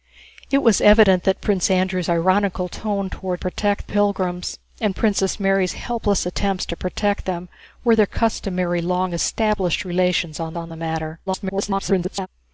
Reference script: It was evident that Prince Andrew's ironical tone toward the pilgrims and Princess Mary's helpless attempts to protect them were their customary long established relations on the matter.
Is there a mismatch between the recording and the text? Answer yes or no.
yes